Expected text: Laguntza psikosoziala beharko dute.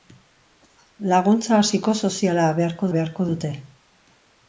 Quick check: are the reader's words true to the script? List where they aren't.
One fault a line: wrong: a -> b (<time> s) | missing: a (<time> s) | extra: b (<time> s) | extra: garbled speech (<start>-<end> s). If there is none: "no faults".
extra: beharko (3.0 s)